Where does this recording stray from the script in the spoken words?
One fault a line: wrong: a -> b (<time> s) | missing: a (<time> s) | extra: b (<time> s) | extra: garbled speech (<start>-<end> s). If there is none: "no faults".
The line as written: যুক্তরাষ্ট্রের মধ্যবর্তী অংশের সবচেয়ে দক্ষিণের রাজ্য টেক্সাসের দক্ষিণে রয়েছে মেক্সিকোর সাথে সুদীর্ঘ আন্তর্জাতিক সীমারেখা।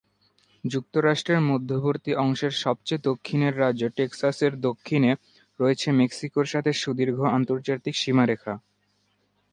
no faults